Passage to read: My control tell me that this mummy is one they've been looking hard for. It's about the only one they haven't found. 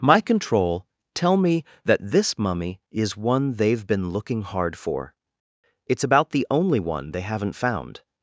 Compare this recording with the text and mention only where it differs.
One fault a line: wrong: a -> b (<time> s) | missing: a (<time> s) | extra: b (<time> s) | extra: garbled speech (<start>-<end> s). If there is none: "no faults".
no faults